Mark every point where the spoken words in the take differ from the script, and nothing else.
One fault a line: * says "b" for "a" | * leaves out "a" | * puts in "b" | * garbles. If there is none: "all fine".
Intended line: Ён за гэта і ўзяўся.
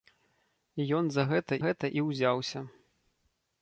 * puts in "гэта"